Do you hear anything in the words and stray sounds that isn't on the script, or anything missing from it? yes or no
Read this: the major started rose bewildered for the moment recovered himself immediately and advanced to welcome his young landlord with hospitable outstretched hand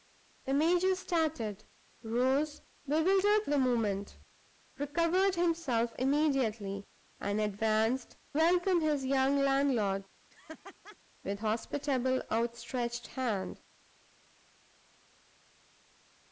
yes